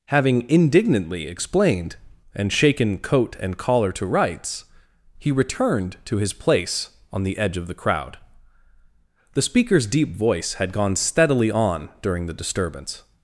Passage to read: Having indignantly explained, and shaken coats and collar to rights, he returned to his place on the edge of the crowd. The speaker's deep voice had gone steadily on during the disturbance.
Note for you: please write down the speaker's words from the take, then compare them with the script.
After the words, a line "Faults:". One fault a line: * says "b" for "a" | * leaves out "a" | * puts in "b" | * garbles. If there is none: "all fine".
Having indignantly explained, and shaken coat and collar to rights, he returned to his place on the edge of the crowd. The speaker's deep voice had gone steadily on during the disturbance.
Faults:
* says "coat" for "coats"